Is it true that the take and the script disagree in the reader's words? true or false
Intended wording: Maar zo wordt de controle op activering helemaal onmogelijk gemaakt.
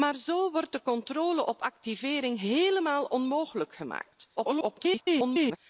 true